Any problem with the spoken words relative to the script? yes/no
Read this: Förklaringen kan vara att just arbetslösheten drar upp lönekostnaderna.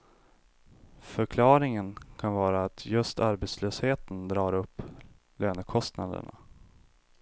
no